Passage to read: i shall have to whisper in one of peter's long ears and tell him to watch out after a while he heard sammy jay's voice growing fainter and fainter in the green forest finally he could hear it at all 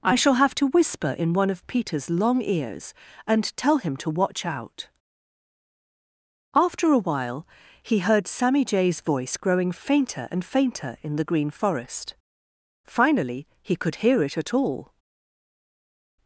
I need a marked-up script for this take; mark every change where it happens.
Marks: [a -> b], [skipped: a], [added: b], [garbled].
i shall have to whisper in one of peter's long ears and tell him to watch out after a while he heard sammy jay's voice growing fainter and fainter in the green forest finally he could hear it at all